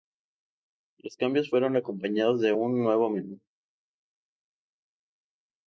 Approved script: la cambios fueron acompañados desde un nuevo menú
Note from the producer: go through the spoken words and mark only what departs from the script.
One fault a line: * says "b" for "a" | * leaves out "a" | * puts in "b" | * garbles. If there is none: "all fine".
* says "los" for "la"
* says "de" for "desde"